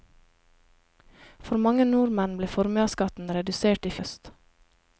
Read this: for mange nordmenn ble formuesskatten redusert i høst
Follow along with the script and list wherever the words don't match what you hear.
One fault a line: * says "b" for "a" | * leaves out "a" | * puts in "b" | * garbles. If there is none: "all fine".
all fine